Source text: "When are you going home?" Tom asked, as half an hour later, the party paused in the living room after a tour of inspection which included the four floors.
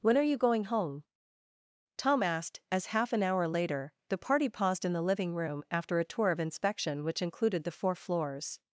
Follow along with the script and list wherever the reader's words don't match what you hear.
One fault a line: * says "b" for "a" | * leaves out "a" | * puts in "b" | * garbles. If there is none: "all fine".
all fine